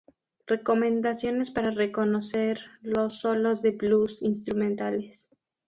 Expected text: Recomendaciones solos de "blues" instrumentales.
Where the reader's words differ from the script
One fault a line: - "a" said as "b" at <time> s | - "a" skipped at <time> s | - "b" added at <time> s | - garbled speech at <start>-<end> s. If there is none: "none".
- "para reconocer los" added at 1.5 s